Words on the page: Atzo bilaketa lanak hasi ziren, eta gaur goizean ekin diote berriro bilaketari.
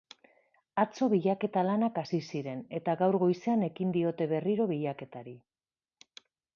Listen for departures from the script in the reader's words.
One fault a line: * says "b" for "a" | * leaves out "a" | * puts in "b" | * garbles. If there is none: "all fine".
all fine